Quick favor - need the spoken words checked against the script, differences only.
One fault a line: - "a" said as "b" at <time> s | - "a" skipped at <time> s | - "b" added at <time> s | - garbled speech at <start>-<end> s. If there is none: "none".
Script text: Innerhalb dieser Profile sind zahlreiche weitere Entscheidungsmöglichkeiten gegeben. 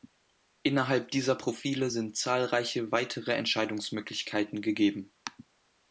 none